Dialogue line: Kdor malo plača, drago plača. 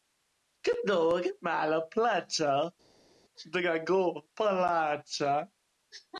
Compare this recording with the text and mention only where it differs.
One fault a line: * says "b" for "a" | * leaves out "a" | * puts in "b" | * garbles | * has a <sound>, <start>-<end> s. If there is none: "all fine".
all fine